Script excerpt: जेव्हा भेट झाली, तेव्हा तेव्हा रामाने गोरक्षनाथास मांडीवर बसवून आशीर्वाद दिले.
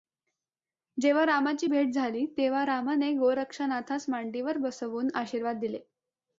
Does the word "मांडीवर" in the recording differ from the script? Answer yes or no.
no